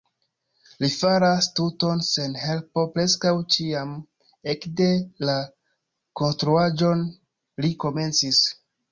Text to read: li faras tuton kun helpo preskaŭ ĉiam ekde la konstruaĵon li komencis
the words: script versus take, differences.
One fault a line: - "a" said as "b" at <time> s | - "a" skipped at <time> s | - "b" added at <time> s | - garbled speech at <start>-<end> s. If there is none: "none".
- "kun" said as "sen" at 2.0 s